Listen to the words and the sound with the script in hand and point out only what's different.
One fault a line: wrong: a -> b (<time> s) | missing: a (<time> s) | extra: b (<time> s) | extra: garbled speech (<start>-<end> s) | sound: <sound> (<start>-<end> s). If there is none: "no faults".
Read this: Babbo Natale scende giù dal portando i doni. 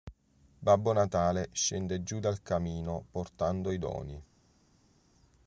extra: camino (2.4 s)